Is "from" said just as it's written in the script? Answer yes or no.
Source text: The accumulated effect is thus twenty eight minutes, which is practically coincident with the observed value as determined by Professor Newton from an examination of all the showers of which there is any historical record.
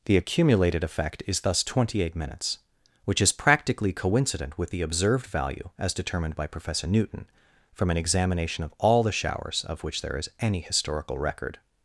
yes